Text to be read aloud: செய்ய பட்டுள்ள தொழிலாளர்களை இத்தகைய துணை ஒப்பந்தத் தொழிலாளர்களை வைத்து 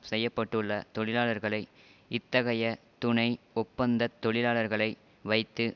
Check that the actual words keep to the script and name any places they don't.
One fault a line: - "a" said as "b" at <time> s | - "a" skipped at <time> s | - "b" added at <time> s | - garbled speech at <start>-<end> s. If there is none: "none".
none